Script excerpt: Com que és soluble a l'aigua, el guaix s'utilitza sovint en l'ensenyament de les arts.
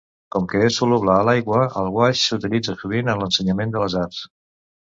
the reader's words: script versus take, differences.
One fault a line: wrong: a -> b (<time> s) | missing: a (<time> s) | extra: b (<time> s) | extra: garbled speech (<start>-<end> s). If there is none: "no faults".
no faults